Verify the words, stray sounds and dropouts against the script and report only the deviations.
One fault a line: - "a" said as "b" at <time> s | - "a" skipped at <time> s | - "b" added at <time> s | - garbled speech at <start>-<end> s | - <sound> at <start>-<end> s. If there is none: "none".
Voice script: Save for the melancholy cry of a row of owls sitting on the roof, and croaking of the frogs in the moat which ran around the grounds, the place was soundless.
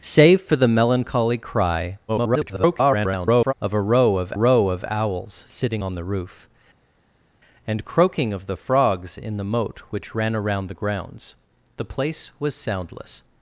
- garbled speech at 2.1-3.5 s
- "row of" added at 4.3 s